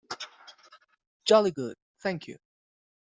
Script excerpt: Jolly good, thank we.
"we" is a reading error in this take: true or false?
true